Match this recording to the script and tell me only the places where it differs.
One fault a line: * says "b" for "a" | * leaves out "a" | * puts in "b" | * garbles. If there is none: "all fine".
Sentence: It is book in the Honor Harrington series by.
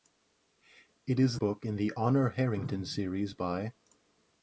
all fine